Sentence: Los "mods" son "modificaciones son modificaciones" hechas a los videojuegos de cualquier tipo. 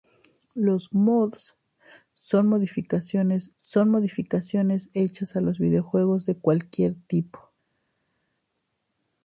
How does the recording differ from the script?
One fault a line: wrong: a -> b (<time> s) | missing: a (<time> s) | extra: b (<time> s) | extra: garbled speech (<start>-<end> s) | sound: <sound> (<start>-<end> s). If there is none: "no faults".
no faults